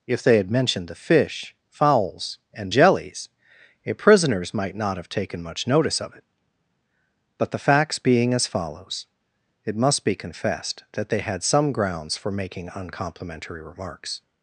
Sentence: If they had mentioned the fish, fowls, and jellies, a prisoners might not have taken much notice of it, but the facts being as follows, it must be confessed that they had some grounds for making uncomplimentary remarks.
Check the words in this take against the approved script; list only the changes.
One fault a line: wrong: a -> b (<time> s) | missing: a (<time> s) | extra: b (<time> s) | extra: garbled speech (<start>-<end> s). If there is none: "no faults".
no faults